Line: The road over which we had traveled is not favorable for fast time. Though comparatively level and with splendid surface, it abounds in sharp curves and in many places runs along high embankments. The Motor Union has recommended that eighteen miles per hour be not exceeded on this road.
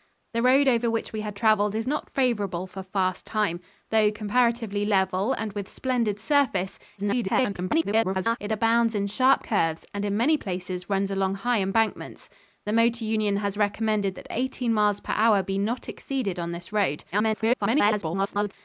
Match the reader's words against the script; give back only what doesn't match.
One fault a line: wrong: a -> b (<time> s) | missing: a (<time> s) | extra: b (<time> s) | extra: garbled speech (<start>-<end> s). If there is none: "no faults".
extra: garbled speech (7.0-8.4 s)
extra: garbled speech (17.1-18.5 s)